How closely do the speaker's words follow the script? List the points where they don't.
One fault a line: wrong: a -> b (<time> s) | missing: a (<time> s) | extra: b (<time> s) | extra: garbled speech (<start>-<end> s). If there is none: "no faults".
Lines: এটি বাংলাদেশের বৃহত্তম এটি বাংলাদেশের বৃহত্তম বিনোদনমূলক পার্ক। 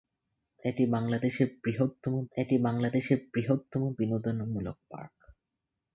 no faults